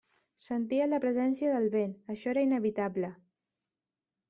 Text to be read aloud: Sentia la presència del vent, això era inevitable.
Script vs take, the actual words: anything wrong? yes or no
no